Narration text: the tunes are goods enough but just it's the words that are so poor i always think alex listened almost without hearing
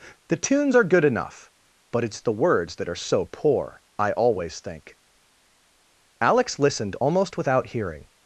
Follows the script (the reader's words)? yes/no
no